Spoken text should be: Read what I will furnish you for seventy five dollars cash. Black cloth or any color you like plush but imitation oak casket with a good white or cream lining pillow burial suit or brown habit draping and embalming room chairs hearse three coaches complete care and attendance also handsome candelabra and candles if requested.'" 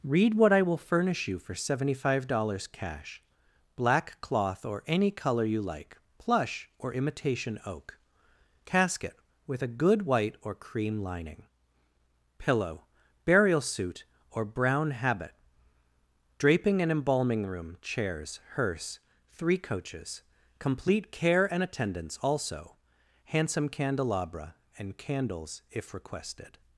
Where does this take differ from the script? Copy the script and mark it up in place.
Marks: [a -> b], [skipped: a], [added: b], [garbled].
Read what I will furnish you for seventy five dollars cash. Black cloth or any color you like plush [but -> or] imitation oak casket with a good white or cream lining pillow burial suit or brown habit draping and embalming room chairs hearse three coaches complete care and attendance also handsome candelabra and candles if requested.'"